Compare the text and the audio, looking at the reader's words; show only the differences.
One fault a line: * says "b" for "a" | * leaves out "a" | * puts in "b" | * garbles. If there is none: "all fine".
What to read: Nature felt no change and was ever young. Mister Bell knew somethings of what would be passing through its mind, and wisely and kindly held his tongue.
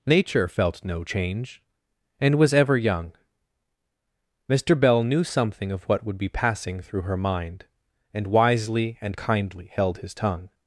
* says "something" for "somethings"
* says "her" for "its"